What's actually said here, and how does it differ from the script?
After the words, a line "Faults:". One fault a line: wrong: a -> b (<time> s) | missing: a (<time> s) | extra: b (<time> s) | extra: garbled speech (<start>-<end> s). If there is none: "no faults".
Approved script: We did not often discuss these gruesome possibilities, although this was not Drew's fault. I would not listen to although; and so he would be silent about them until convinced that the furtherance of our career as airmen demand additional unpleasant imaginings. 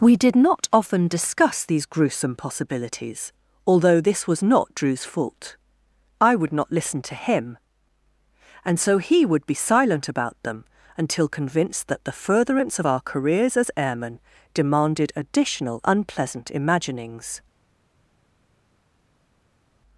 We did not often discuss these gruesome possibilities, although this was not Drew's fault. I would not listen to him; and so he would be silent about them until convinced that the furtherance of our careers as airmen demanded additional unpleasant imaginings.
Faults:
wrong: although -> him (7.1 s)
wrong: career -> careers (13.0 s)
wrong: demand -> demanded (14.5 s)